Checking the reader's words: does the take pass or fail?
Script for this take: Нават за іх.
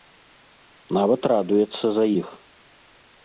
fail